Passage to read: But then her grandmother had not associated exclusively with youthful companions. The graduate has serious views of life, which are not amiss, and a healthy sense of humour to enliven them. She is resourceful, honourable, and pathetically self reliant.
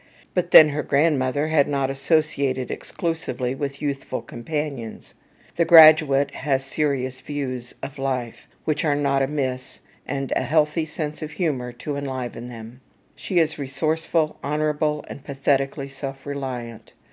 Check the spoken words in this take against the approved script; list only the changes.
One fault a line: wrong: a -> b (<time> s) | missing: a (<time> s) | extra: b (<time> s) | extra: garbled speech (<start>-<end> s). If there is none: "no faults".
no faults